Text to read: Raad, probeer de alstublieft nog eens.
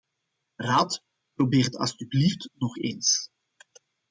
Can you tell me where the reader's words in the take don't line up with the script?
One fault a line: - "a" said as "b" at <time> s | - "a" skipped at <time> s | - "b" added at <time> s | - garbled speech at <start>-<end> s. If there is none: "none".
- "de" said as "het" at 1.6 s